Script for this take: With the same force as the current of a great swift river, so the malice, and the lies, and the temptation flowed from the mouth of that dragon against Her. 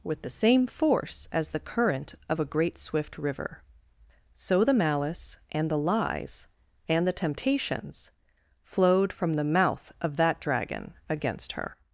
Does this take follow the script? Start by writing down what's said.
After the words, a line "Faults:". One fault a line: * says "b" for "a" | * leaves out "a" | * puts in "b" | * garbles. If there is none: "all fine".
With the same force as the current of a great swift river, so the malice, and the lies, and the temptations flowed from the mouth of that dragon against Her.
Faults:
* says "temptations" for "temptation"